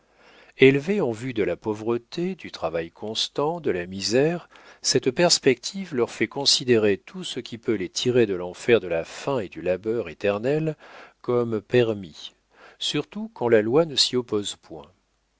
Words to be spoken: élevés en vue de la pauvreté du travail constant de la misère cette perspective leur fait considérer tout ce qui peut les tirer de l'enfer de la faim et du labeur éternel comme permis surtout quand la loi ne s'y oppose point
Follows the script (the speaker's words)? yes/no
yes